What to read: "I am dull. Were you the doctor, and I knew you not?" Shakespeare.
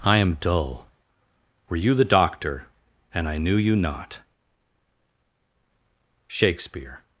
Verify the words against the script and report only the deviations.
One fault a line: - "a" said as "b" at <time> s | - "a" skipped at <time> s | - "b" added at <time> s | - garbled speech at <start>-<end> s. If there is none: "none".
none